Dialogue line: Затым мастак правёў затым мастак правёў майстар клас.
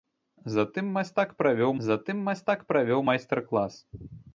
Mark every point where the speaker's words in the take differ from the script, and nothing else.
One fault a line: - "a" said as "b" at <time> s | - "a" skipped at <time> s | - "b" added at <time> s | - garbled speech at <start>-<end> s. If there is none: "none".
none